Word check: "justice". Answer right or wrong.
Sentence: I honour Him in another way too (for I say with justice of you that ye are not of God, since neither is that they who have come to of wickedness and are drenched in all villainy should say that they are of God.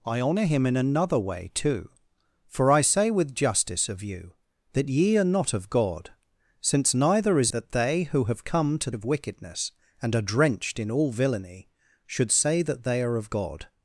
right